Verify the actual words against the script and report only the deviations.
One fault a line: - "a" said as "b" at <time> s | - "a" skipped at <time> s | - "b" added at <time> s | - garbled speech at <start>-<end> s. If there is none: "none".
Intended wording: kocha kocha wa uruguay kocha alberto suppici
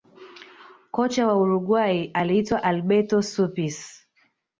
- "kocha" skipped at 1.3 s
- "kocha" said as "aliitwa" at 2.1 s